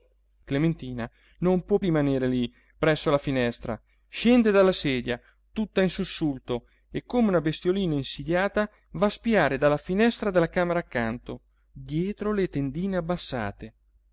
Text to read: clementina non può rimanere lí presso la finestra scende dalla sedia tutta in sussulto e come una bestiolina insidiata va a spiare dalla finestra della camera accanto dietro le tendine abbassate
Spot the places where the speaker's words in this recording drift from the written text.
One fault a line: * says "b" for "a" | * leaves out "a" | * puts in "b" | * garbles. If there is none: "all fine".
all fine